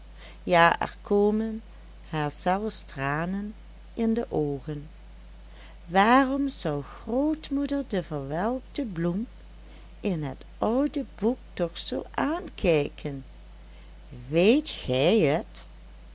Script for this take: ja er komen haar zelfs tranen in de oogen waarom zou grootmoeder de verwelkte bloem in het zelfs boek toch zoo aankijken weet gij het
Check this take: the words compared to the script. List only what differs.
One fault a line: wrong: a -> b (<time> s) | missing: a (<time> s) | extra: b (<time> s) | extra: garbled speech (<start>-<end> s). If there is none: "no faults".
wrong: zelfs -> oude (10.6 s)